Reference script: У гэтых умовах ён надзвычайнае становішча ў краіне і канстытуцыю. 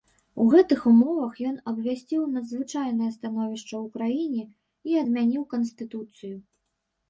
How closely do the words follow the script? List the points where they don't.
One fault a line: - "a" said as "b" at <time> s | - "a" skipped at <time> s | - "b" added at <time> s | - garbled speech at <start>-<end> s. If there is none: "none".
- "абвясціў" added at 1.7 s
- "адмяніў" added at 5.0 s